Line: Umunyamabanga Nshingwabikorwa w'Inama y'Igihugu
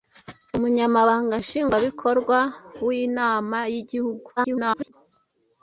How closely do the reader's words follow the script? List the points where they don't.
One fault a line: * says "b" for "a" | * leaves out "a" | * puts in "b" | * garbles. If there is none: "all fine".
* garbles